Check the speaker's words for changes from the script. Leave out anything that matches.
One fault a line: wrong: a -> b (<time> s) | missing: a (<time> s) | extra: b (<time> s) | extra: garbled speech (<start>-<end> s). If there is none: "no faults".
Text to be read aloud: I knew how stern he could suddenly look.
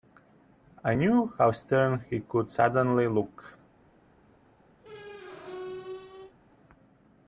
no faults